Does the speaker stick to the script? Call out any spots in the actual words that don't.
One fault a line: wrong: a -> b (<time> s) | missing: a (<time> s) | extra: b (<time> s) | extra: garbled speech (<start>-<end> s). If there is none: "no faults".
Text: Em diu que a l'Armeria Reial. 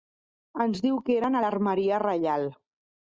wrong: Em -> Ens (0.7 s)
extra: eren (1.2 s)